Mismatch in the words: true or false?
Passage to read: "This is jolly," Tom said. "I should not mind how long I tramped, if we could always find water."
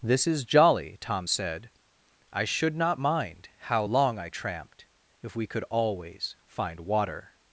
false